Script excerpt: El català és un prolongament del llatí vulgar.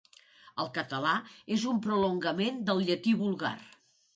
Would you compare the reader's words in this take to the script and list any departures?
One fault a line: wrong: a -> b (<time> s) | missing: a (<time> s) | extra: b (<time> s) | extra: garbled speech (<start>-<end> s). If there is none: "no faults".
no faults